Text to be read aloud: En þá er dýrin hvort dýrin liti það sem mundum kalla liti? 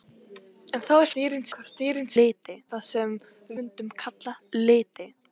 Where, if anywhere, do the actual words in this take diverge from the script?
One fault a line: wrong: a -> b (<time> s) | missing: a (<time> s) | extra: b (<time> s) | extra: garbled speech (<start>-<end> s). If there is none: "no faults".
no faults